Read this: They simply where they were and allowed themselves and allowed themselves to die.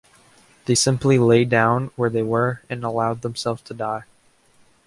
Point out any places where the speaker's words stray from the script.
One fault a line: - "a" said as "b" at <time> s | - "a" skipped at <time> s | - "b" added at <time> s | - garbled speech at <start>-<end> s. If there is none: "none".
- "lay down" added at 1.2 s
- "and allowed themselves" skipped at 3.6 s